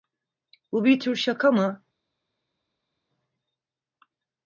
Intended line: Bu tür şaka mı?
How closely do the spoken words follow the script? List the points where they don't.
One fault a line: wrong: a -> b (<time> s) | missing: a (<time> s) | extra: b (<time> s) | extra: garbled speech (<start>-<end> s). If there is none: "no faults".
extra: bir (0.8 s)